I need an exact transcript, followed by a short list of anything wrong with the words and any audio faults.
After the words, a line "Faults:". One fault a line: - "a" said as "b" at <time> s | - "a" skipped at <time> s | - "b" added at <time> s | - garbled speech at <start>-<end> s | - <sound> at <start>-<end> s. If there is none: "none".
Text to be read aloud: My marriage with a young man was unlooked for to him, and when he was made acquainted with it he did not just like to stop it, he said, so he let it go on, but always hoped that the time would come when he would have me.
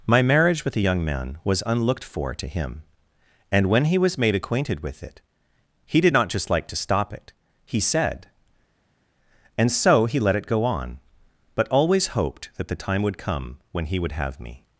My marriage with a young man was unlooked for to him, and when he was made acquainted with it he did not just like to stop it, he said, and so he let it go on, but always hoped that the time would come when he would have me.
Faults:
- "and" added at 9.6 s